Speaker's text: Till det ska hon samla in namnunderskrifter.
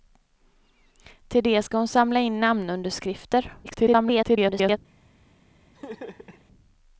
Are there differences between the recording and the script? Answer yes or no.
yes